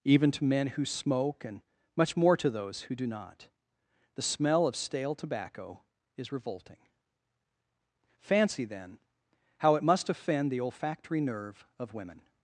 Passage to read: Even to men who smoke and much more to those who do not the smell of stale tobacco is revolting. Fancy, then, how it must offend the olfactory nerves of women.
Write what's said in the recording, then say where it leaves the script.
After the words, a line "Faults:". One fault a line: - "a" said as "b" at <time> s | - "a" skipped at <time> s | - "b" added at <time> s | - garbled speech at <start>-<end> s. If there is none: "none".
Even to men who smoke and much more to those who do not the smell of stale tobacco is revolting. Fancy, then, how it must offend the olfactory nerve of women.
Faults:
- "nerves" said as "nerve" at 11.2 s